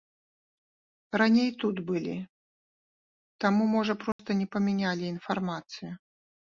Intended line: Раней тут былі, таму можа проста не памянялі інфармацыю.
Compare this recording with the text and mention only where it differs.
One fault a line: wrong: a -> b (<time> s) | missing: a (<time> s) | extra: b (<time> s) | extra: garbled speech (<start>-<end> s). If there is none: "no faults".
no faults